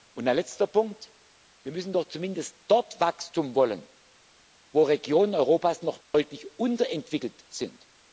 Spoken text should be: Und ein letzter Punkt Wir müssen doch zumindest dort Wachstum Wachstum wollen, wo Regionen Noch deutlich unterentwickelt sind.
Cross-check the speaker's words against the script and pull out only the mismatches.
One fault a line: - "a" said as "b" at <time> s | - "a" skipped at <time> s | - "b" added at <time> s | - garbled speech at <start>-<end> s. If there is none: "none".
- "Wachstum" skipped at 3.6 s
- "Europas" added at 5.3 s